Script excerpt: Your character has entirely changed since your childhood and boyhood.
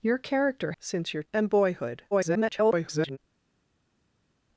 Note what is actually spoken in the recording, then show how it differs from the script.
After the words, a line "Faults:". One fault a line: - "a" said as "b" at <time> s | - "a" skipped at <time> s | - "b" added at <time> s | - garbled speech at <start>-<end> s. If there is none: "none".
Your character since your and boyhood. [garbled]
Faults:
- "has entirely changed" skipped at 0.7 s
- "childhood" skipped at 1.2 s
- garbled speech at 2.1-3.2 s